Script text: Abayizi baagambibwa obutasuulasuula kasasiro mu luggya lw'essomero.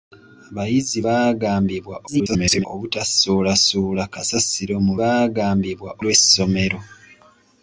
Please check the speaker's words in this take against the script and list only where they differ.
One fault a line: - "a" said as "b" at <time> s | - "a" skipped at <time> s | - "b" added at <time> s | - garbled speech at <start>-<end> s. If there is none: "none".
- garbled speech at 2.1-2.7 s
- "luggya" said as "baagambibwa" at 5.0 s